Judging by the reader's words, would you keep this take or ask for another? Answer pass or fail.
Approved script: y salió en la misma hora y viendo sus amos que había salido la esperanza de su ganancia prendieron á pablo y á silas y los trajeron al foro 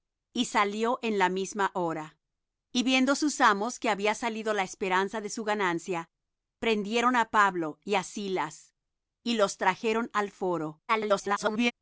fail